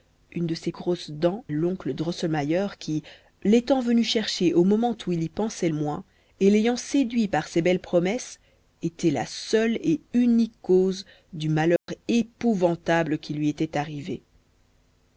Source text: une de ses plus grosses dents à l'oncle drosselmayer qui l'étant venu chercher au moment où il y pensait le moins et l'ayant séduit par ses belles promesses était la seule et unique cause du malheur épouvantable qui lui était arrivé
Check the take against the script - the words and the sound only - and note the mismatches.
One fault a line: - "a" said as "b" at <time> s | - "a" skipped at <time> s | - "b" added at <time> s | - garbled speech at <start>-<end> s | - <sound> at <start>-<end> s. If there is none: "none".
- "plus" skipped at 0.7 s
- "à" skipped at 1.4 s
- "le" skipped at 5.7 s
- dropout at 11.8-11.9 s